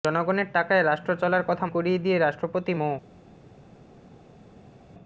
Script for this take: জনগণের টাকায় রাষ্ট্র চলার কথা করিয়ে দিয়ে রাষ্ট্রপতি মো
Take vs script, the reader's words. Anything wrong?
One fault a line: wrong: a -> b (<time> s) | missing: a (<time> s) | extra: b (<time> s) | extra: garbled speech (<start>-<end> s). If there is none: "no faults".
no faults